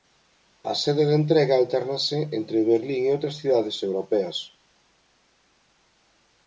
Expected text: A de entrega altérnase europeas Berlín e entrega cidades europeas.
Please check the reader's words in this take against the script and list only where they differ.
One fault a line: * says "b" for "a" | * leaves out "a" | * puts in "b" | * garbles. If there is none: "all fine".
* puts in "sede"
* says "entre" for "europeas"
* says "outras" for "entrega"